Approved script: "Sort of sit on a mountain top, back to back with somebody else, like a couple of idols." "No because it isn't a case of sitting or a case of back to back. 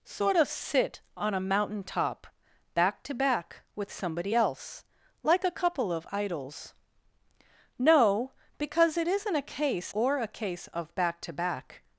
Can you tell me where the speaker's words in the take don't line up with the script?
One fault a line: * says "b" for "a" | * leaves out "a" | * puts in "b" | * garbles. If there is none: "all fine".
* leaves out "of sitting"